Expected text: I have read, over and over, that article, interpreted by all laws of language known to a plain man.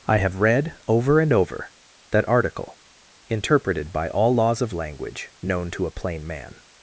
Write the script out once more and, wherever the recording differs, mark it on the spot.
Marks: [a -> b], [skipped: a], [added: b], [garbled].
I have read, over and over, that article, interpreted by all laws of language known to a plain man.